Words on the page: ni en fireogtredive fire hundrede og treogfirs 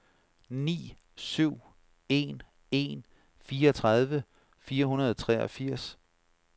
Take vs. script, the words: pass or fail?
fail